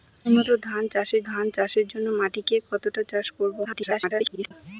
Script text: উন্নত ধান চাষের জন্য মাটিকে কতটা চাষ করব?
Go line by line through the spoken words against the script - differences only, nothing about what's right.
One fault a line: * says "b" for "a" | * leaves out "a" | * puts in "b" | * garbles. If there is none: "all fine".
* puts in "ধান চাষের"
* garbles